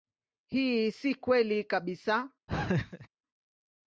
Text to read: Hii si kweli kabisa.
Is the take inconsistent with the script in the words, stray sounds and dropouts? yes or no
yes